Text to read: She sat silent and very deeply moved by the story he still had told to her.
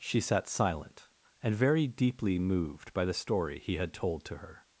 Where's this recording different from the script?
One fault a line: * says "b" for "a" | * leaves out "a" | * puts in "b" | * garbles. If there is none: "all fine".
* leaves out "still"